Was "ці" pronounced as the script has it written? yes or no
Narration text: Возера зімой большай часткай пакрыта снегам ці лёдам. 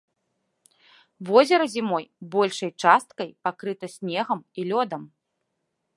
no